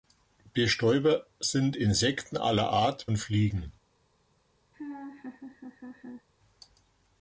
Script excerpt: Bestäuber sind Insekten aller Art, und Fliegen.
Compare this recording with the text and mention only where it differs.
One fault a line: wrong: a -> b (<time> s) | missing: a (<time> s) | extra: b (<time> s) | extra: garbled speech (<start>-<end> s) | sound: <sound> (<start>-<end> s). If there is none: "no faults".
sound: laugh (4.7-6.3 s)